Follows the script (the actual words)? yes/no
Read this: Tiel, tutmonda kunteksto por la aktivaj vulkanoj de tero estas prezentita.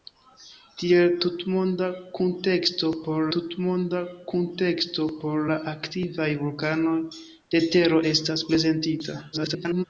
no